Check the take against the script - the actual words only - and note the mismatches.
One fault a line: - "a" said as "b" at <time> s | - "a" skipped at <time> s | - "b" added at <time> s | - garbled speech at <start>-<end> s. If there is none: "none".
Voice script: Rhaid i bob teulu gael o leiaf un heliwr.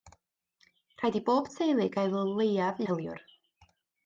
- "un" skipped at 2.8 s